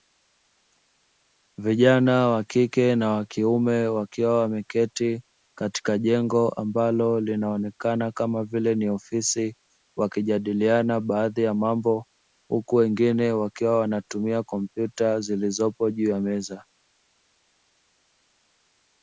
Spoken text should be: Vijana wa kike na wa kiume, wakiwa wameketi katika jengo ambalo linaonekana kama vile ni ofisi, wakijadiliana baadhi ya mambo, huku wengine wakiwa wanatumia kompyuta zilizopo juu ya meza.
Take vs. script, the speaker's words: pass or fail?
pass